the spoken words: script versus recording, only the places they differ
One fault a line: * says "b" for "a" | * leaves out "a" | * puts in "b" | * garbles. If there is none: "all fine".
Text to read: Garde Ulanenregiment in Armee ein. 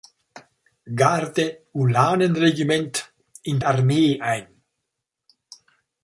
all fine